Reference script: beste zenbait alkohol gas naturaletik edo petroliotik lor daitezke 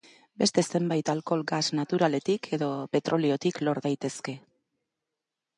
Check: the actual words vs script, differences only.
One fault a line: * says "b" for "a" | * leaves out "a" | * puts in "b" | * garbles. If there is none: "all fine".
all fine